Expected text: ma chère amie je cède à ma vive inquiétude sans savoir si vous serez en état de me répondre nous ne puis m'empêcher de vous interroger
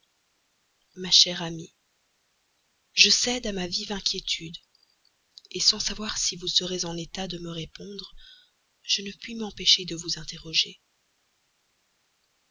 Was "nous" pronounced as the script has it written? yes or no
no